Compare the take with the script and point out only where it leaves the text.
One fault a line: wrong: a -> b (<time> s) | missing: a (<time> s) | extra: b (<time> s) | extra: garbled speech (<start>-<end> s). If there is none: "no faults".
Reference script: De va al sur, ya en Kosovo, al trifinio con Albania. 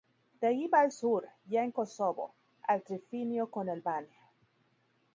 extra: allí (0.5 s)